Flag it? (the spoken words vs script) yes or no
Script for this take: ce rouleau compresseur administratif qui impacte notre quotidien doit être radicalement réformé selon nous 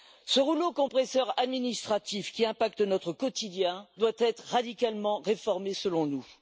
no